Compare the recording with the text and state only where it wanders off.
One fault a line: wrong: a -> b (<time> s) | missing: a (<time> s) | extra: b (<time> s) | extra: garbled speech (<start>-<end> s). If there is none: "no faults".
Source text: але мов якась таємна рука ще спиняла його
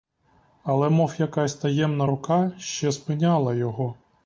no faults